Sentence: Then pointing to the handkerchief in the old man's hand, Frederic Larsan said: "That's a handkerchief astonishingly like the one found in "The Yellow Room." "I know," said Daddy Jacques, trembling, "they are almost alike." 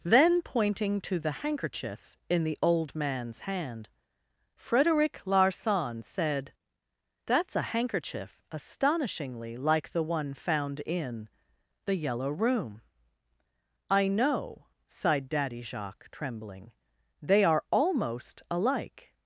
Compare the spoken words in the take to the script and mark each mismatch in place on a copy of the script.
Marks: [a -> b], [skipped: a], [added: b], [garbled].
Then pointing to the handkerchief in the old man's hand, Frederic Larsan said: "That's a handkerchief astonishingly like the one found in "The Yellow Room." "I know," [said -> sighed] Daddy Jacques, trembling, "they are almost alike."